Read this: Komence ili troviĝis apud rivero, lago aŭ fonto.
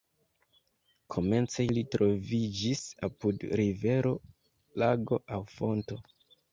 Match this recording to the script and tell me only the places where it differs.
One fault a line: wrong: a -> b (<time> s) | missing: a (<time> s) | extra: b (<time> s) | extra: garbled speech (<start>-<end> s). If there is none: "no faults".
no faults